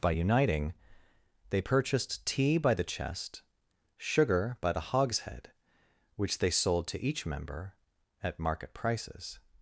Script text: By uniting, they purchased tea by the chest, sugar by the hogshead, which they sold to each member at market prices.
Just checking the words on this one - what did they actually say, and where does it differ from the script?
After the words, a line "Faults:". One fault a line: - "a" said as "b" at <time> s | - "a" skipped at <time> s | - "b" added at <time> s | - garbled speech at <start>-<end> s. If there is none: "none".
By uniting, they purchased tea by the chest, sugar by the hogshead, which they sold to each member at market prices.
Faults:
none